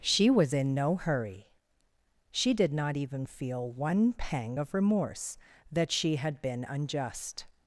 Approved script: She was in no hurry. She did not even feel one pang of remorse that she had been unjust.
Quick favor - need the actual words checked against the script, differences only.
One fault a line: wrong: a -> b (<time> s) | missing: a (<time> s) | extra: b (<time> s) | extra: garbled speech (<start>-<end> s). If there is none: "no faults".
no faults